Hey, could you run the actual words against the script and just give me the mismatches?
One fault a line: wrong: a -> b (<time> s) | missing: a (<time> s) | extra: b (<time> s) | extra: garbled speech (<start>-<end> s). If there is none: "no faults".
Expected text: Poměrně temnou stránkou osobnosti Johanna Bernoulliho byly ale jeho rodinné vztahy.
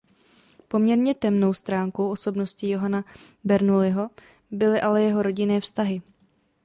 no faults